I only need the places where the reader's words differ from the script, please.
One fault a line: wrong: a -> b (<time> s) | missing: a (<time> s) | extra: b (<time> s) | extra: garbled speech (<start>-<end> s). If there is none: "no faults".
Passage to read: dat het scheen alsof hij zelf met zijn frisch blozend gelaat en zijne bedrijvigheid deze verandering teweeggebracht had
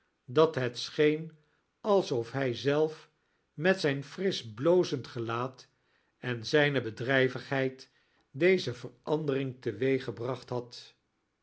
no faults